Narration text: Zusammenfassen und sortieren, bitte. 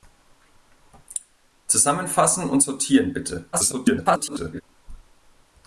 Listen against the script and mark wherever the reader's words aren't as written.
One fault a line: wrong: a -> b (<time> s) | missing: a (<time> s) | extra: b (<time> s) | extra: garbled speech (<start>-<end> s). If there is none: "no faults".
extra: garbled speech (3.5-4.6 s)